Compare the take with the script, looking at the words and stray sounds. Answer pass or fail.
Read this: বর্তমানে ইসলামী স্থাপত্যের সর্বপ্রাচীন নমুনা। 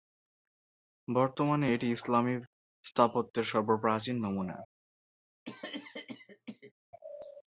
fail